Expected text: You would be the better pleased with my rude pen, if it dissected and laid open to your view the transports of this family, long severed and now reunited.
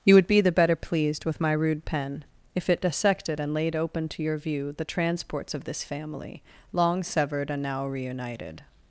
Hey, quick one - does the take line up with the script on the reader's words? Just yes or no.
yes